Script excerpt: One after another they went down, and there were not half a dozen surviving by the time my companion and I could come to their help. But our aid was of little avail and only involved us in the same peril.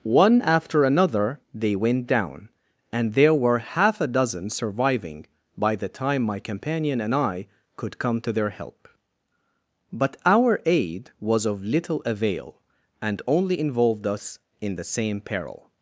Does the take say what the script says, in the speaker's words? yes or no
no